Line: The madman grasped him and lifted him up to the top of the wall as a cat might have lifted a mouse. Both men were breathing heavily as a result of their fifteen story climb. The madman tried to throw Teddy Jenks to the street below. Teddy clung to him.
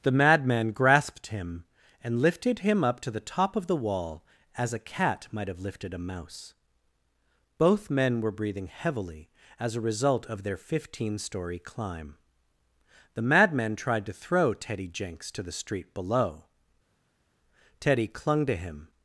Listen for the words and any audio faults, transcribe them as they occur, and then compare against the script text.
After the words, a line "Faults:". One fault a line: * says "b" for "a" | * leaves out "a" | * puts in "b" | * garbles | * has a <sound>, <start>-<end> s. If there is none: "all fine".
The madman grasped him and lifted him up to the top of the wall as a cat might have lifted a mouse. Both men were breathing heavily as a result of their fifteen story climb. The madman tried to throw Teddy Jenks to the street below. Teddy clung to him.
Faults:
all fine